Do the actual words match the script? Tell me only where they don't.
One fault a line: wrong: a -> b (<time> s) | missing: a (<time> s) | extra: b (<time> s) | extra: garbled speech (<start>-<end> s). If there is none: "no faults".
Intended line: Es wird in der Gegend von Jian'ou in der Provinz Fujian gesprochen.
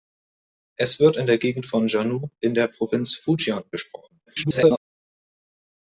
extra: garbled speech (4.3-4.8 s)